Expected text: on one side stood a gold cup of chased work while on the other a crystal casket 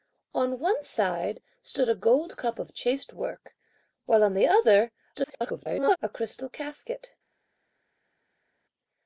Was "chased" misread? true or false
false